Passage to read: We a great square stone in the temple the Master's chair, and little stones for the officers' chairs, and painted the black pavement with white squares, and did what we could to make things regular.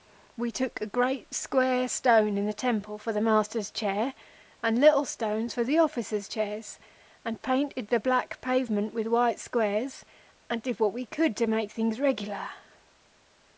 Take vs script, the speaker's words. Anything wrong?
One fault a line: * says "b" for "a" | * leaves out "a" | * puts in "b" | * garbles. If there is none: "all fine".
* puts in "took"
* puts in "for"